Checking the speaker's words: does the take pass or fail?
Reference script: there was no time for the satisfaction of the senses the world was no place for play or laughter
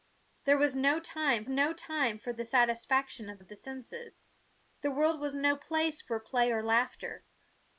fail